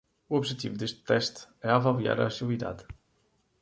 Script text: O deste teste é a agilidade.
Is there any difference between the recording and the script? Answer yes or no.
yes